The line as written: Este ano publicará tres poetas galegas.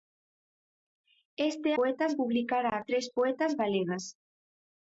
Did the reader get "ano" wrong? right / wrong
wrong